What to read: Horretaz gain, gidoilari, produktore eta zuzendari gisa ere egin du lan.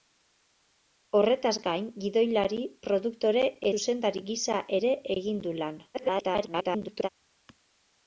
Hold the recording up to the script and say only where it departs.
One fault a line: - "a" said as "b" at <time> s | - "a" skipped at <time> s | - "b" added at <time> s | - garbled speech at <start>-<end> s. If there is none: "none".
- "eta" skipped at 3.5 s
- garbled speech at 5.9-7.1 s